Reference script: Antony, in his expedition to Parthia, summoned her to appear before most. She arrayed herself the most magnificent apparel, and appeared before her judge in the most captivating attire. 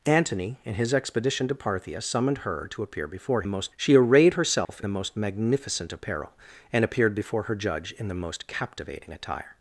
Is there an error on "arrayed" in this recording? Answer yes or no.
no